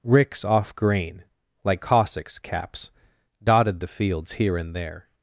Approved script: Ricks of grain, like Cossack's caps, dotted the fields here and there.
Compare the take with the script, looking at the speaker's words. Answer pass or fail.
fail